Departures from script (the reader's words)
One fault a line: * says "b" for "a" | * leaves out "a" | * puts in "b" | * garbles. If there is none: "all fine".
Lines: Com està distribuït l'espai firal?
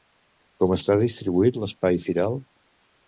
all fine